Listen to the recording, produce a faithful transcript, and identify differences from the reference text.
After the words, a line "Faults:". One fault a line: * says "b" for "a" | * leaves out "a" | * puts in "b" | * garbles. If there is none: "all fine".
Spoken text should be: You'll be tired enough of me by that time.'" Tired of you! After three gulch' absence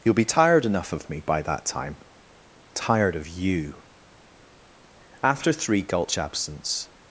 You'll be tired enough of me by that time.'" Tired of you! After three gulch' absence
Faults:
all fine